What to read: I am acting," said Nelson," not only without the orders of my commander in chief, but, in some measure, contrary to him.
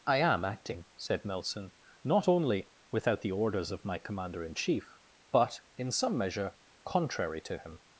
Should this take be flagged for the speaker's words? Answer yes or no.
no